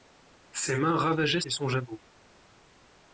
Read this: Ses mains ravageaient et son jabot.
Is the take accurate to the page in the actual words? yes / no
yes